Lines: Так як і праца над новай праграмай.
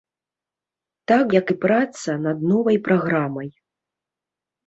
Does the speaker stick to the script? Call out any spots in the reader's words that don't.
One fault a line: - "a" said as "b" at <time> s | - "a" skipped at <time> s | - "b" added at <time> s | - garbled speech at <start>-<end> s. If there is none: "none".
none